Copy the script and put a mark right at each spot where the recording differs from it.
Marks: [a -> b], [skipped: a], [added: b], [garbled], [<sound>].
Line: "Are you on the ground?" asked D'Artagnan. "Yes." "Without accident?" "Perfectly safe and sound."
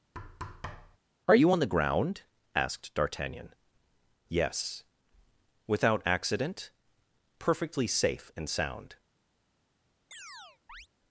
[thud] "Are you on the ground?" asked D'Artagnan. "Yes." "Without accident?" "Perfectly safe and sound." [chirp]